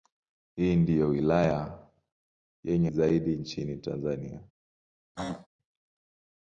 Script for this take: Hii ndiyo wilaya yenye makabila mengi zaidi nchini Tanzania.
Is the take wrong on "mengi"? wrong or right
wrong